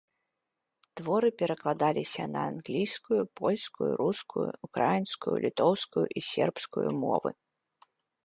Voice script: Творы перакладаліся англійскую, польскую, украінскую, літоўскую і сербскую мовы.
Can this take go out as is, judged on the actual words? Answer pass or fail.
fail